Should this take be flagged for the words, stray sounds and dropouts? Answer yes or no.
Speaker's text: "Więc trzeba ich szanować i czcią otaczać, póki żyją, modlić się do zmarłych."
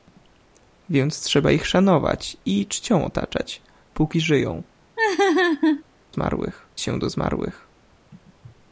yes